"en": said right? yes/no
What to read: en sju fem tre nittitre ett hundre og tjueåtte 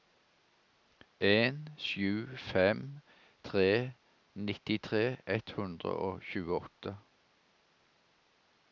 yes